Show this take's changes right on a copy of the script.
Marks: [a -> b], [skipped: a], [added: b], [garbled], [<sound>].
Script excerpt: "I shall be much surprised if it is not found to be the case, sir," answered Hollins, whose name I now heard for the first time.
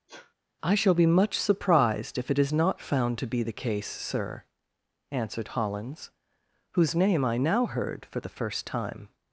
[sneeze] "I shall be much surprised if it is not found to be the case, sir," answered Hollins, whose name I now heard for the first time.